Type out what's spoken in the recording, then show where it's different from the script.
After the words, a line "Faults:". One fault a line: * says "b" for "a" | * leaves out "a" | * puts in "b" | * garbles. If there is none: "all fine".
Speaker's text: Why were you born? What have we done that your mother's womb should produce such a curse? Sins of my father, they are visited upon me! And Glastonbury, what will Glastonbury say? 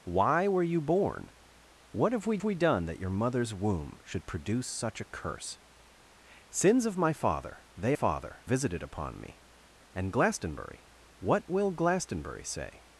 Why were you born? What have we we done that your mother's womb should produce such a curse? Sins of my father, they father visited upon me! And Glastonbury, what will Glastonbury say?
Faults:
* puts in "we"
* says "father" for "are"